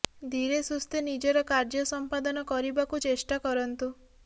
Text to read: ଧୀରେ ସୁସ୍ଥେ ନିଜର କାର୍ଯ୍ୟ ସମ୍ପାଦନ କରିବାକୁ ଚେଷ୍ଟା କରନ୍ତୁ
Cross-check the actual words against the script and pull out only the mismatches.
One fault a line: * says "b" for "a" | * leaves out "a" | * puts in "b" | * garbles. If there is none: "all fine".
all fine